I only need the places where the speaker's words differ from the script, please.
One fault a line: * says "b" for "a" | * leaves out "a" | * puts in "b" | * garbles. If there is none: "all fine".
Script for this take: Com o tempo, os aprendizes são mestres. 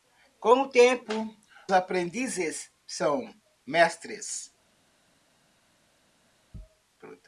* leaves out "os"